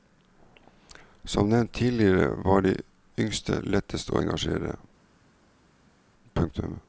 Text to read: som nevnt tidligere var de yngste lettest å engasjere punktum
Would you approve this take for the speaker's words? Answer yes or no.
yes